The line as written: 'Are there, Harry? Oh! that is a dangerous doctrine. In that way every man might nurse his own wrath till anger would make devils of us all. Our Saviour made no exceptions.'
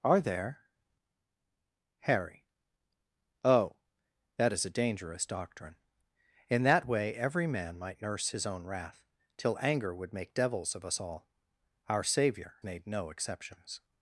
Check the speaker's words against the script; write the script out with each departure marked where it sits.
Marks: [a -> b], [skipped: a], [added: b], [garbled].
'Are there, Harry? Oh! that is a dangerous doctrine. In that way every man might nurse his own wrath till anger would make devils of us all. Our Saviour made no exceptions.'